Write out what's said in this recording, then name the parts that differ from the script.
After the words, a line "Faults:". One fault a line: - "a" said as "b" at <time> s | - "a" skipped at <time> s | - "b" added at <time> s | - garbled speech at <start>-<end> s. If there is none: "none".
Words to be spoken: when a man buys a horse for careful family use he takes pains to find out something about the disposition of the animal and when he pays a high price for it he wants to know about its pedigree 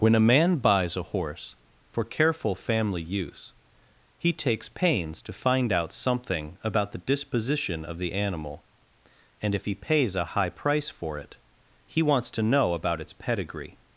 when a man buys a horse for careful family use he takes pains to find out something about the disposition of the animal and if he pays a high price for it he wants to know about its pedigree
Faults:
- "when" said as "if" at 9.5 s